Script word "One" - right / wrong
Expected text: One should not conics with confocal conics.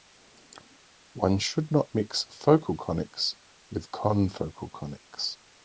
right